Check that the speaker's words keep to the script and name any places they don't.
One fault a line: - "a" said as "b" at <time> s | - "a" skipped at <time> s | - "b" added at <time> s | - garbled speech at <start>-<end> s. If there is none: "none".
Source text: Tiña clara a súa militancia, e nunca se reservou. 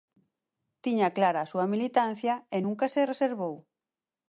none